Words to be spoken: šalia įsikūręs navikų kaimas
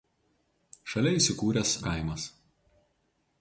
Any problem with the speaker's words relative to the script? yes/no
yes